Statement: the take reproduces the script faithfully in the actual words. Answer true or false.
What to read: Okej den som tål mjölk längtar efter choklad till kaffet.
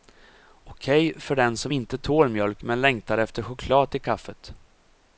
false